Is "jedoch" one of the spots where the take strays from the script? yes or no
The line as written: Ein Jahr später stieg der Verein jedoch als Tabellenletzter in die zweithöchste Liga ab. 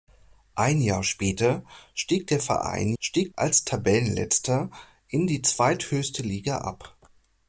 yes